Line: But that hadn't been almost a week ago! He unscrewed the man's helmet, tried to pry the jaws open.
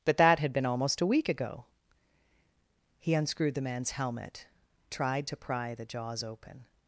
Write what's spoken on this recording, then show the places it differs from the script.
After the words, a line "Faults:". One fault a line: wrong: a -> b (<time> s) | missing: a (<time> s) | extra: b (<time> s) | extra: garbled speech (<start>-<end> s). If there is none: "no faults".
But that had been almost a week ago! He unscrewed the man's helmet, tried to pry the jaws open.
Faults:
wrong: hadn't -> had (0.4 s)